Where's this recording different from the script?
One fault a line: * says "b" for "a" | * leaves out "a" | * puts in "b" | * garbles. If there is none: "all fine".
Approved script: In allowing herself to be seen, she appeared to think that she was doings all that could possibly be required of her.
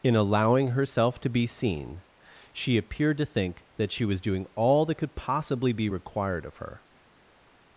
* says "doing" for "doings"